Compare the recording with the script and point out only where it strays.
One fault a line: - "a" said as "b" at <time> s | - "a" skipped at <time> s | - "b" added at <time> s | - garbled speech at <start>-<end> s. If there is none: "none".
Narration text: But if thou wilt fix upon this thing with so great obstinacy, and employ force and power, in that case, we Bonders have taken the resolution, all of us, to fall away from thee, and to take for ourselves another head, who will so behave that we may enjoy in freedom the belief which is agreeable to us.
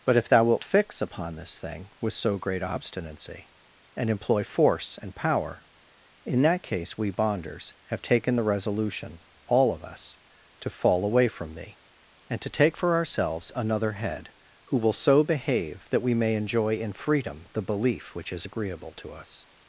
none